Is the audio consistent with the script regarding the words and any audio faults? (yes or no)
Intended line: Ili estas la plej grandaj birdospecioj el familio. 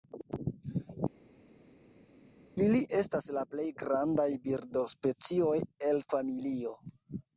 yes